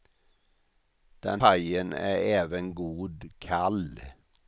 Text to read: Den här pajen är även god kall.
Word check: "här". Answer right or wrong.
wrong